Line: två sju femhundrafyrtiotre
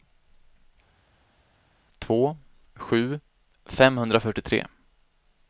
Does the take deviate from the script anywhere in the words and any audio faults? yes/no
no